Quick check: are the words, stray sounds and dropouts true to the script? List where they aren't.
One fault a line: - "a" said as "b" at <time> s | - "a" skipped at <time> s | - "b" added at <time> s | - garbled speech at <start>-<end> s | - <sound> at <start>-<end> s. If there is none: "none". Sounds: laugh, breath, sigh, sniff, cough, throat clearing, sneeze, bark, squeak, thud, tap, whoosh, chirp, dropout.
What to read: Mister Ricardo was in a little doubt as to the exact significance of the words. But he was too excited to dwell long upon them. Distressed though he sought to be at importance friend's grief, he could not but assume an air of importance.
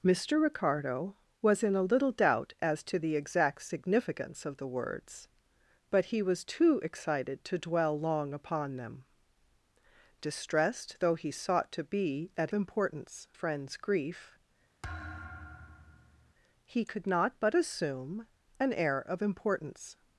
- thud at 14.8-16.3 s